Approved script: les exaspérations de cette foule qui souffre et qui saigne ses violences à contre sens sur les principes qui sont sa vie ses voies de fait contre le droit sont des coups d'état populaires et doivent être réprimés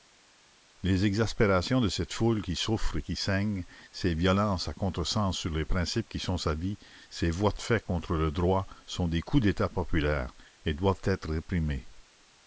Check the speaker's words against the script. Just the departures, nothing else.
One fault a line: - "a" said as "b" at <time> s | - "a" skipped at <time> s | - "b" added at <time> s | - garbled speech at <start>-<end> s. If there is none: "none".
none